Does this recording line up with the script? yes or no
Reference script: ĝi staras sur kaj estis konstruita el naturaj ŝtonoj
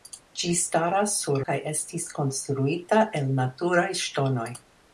yes